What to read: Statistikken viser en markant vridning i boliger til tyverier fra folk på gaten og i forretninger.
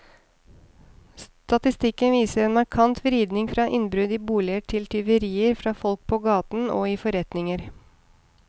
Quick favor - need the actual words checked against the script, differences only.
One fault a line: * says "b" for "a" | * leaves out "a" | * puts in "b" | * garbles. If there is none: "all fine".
* puts in "fra innbrudd"